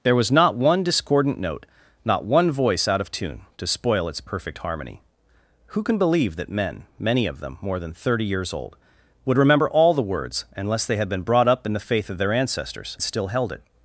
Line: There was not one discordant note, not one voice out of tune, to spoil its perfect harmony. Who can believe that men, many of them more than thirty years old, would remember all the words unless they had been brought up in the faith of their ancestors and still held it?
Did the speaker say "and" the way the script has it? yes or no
no